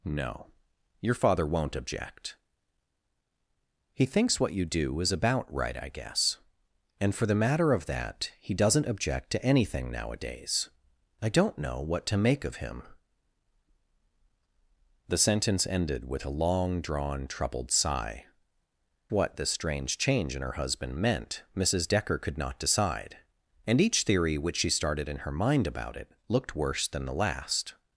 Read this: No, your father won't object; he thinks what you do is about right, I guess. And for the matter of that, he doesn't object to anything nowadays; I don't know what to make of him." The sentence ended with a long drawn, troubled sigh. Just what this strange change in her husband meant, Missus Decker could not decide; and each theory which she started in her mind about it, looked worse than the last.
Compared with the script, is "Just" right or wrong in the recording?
wrong